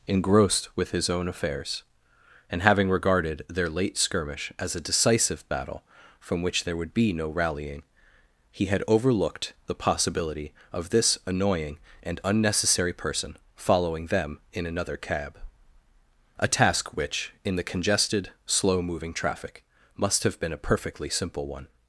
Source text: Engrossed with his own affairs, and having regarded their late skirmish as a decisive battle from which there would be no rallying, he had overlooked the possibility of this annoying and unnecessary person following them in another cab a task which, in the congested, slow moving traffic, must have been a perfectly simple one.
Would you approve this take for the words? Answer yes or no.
yes